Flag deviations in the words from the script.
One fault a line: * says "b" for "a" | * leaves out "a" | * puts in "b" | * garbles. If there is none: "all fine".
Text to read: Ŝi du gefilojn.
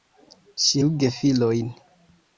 all fine